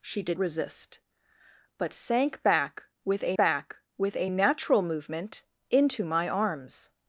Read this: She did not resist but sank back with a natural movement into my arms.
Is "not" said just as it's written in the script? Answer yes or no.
no